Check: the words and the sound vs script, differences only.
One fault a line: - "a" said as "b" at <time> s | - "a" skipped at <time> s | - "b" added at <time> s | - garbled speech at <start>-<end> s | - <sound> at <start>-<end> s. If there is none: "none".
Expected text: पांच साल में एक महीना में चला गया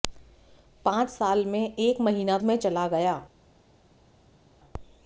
none